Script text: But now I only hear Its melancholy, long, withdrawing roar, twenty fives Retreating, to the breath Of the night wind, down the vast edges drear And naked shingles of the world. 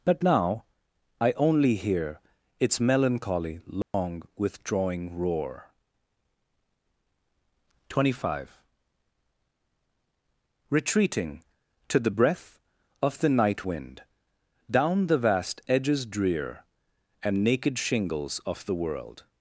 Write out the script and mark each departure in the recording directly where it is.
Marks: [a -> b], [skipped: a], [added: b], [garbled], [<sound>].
But now I only hear Its melancholy, long, [dropout] withdrawing roar, twenty [fives -> five] Retreating, to the breath Of the night wind, down the vast edges drear And naked shingles of the world.